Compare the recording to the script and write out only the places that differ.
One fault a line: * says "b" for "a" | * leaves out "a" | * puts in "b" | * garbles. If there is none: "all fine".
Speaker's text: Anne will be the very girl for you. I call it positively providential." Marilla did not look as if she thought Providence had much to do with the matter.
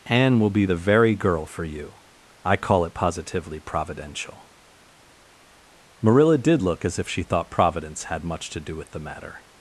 * leaves out "not"